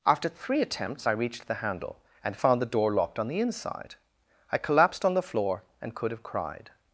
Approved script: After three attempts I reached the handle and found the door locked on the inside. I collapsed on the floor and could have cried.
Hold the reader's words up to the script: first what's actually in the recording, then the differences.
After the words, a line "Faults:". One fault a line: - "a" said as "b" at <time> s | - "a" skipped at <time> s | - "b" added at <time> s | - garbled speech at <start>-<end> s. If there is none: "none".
After three attempts I reached the handle and found the door locked on the inside. I collapsed on the floor and could have cried.
Faults:
none